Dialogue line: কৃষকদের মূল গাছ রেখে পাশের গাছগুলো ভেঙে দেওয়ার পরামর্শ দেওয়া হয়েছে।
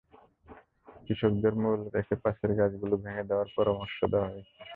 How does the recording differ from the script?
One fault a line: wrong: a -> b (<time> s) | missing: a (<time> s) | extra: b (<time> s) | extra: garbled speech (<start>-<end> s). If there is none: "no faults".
missing: গাছ (1.8 s)